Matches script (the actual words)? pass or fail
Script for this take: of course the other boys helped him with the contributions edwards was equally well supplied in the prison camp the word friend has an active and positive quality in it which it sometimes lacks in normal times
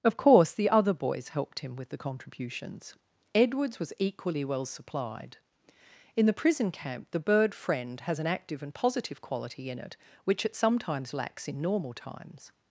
fail